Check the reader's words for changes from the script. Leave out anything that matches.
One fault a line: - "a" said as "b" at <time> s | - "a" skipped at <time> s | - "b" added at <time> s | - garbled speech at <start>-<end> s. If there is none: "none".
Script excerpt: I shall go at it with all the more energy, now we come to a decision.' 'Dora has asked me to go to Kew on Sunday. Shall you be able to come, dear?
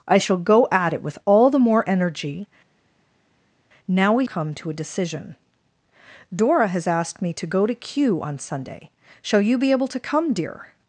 none